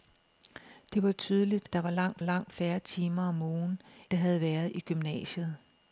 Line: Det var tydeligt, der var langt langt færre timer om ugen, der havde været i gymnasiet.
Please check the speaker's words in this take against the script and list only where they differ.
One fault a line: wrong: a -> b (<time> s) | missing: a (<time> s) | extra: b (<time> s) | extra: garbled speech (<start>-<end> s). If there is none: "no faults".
no faults